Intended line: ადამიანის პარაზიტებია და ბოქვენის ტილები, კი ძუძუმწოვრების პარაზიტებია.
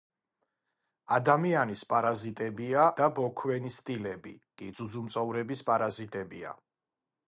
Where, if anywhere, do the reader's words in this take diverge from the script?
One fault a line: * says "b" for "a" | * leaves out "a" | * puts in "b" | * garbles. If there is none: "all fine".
all fine